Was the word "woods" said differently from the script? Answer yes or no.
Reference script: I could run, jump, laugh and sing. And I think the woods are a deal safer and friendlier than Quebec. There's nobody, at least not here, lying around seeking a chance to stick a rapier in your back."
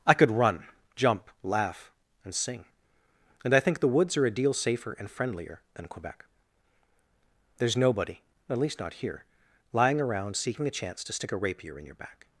no